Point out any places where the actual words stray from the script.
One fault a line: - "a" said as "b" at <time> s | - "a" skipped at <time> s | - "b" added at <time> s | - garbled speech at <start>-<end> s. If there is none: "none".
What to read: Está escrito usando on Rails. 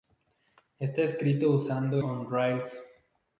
none